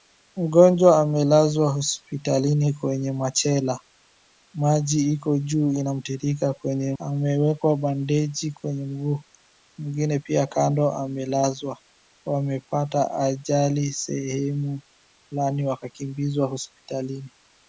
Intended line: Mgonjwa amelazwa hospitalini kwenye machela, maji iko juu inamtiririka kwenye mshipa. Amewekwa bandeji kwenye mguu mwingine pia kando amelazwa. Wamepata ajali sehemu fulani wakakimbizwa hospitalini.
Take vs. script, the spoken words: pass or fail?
fail